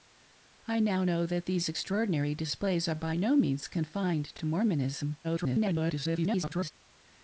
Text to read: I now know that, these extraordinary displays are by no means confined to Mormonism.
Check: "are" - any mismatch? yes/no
no